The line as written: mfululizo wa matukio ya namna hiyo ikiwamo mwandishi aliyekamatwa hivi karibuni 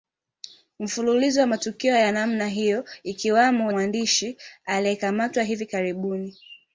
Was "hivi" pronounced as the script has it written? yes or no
yes